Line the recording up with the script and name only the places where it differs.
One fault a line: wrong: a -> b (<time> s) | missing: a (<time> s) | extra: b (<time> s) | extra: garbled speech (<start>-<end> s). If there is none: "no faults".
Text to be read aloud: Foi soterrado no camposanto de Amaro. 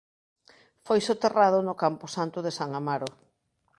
extra: San (2.6 s)